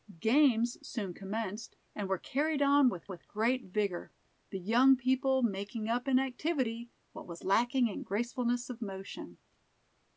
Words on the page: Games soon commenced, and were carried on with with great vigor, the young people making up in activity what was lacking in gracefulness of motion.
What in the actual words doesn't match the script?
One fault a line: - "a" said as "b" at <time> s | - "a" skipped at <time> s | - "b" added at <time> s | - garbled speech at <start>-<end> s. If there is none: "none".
none